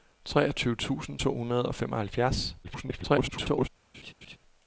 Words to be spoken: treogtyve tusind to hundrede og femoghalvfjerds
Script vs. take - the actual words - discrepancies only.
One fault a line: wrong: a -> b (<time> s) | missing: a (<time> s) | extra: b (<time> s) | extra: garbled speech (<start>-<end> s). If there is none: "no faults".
extra: garbled speech (2.6-3.7 s)